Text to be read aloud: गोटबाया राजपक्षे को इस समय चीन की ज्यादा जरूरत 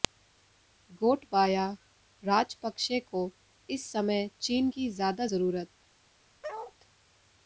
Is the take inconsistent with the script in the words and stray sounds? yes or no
yes